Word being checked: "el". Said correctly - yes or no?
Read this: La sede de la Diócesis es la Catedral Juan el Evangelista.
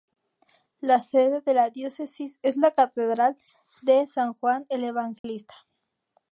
yes